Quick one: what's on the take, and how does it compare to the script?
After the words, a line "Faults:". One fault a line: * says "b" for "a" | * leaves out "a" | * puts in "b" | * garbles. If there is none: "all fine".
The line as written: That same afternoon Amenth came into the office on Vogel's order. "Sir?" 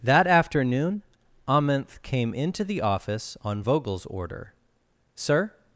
That afternoon Amenth came into the office on Vogel's order. "Sir?"
Faults:
* leaves out "same"